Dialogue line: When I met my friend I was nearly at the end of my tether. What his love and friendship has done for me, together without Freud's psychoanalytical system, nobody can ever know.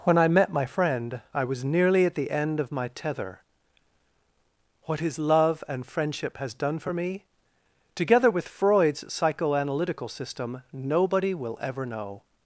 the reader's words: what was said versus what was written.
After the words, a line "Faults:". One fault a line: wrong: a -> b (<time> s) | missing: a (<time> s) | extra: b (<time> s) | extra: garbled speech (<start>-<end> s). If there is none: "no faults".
When I met my friend I was nearly at the end of my tether. What his love and friendship has done for me, together with Freud's psychoanalytical system, nobody will ever know.
Faults:
wrong: without -> with (8.3 s)
wrong: can -> will (11.3 s)